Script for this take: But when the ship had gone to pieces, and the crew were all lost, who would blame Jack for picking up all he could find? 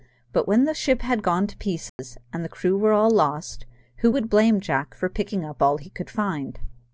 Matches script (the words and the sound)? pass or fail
fail